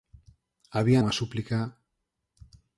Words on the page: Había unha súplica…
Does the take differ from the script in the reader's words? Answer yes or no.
no